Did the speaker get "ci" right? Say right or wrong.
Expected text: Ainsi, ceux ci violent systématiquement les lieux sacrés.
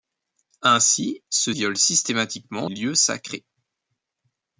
wrong